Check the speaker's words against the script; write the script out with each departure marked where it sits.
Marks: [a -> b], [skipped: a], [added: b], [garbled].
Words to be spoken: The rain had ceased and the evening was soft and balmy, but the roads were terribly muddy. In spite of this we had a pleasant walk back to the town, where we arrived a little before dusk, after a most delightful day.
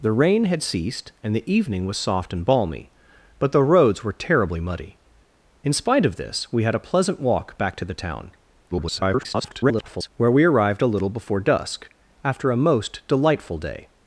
The rain had ceased and the evening was soft and balmy, but the roads were terribly muddy. In spite of this we had a pleasant walk back to the town, [garbled] where we arrived a little before dusk, after a most delightful day.